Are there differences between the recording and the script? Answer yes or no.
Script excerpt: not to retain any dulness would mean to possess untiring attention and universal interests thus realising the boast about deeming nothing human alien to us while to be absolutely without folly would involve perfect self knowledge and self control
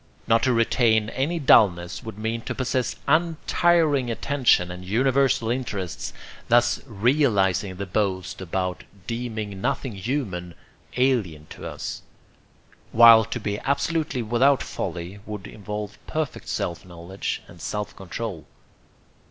no